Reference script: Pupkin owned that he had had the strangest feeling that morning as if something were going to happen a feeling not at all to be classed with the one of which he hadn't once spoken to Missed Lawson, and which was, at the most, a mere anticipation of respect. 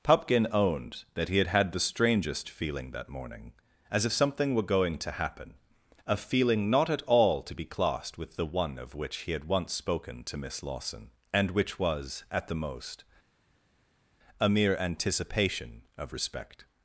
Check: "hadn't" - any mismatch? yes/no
yes